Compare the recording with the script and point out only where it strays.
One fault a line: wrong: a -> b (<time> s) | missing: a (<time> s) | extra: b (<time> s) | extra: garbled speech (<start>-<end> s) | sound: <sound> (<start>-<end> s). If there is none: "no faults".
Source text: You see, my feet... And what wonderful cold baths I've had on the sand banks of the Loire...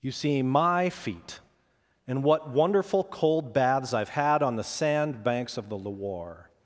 no faults